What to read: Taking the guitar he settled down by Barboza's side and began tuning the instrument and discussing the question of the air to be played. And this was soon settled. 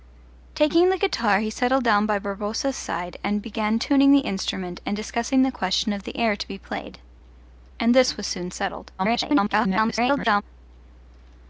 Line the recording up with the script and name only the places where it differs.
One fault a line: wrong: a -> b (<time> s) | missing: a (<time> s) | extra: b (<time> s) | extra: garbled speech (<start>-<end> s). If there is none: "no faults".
extra: garbled speech (9.0-10.4 s)